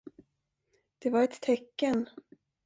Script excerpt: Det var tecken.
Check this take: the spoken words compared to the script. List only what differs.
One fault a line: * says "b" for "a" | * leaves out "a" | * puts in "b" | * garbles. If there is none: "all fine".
* puts in "ett"